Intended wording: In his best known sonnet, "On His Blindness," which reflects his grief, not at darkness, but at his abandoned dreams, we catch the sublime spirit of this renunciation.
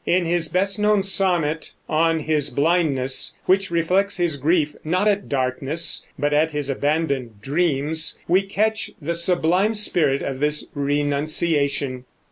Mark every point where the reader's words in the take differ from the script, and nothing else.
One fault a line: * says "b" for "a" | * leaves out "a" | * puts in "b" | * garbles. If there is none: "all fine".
all fine